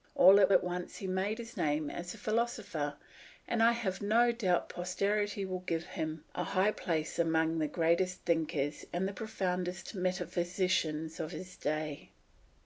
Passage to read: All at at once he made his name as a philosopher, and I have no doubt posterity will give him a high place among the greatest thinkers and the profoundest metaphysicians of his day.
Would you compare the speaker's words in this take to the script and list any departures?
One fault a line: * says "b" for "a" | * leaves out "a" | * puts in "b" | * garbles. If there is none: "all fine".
all fine